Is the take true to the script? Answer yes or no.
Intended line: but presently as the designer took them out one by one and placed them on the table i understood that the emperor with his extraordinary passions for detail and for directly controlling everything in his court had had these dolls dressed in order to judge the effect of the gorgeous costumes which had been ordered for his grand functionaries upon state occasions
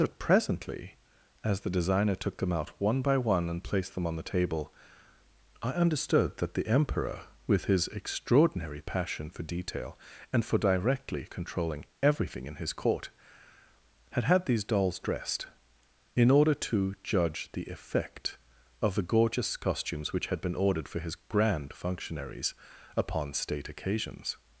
no